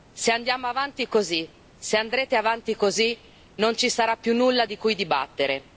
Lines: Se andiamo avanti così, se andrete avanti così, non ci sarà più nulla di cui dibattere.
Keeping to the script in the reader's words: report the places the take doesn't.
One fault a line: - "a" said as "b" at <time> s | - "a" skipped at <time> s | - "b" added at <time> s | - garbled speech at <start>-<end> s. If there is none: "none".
none